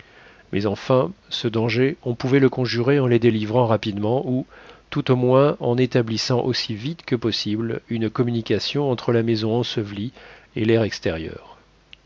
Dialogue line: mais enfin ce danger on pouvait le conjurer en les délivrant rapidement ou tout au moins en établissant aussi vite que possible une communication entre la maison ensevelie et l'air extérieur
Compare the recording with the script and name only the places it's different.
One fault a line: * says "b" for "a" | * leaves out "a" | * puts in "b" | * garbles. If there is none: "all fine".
all fine